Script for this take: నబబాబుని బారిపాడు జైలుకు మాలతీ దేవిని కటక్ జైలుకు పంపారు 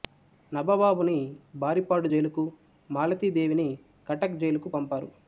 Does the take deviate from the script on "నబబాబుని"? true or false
false